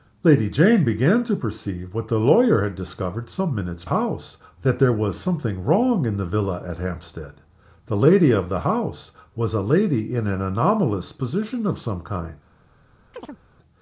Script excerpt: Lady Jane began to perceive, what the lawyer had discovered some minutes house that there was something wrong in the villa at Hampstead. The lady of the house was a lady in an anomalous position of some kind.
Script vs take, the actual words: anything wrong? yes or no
no